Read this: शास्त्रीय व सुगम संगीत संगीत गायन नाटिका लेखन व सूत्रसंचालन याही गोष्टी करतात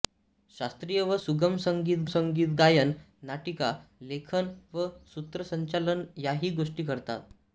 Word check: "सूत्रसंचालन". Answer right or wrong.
right